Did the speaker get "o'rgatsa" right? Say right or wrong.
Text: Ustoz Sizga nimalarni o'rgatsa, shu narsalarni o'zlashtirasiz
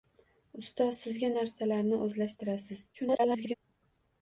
wrong